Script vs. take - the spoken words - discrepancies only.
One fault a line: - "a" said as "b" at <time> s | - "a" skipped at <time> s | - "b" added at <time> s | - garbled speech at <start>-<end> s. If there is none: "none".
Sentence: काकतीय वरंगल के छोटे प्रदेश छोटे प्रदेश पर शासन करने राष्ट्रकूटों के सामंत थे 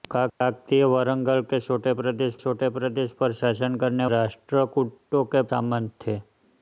none